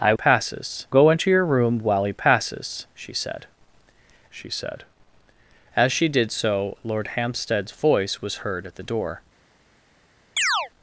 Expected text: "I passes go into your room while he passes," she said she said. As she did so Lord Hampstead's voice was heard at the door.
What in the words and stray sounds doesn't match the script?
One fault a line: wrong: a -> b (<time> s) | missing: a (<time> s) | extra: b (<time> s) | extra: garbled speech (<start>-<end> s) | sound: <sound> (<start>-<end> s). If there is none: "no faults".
sound: chirp (10.4-10.7 s)